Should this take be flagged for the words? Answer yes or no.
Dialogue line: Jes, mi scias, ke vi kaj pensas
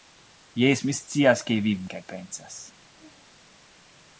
no